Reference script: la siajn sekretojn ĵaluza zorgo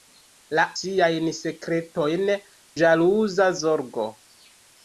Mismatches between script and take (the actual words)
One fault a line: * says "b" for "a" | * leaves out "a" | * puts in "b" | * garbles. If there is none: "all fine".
all fine